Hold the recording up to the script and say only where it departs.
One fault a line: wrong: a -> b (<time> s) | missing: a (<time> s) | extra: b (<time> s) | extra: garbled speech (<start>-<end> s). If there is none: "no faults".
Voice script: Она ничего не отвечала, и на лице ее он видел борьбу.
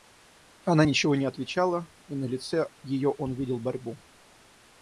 no faults